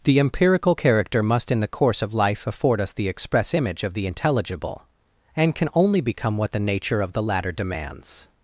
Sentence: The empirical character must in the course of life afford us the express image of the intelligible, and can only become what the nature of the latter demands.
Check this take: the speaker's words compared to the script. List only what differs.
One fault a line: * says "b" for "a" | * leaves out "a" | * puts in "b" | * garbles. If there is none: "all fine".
all fine